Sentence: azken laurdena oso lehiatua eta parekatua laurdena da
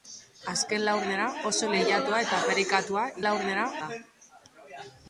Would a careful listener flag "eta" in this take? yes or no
no